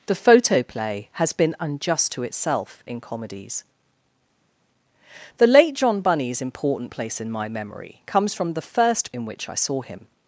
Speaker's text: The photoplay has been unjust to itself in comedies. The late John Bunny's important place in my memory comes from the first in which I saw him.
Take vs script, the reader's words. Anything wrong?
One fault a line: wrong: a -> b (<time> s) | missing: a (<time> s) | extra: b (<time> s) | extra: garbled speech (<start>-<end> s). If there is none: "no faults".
no faults